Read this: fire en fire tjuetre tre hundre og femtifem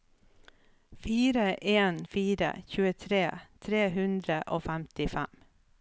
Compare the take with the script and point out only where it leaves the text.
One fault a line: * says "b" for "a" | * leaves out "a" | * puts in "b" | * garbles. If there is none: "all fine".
all fine